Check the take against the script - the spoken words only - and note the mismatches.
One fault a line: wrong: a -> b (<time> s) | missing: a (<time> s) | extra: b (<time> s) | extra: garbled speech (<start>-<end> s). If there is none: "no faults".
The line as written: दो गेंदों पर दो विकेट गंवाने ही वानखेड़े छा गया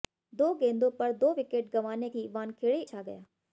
no faults